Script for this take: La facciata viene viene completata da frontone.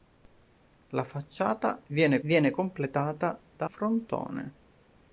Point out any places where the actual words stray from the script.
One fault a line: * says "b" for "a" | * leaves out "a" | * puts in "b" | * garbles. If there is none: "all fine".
all fine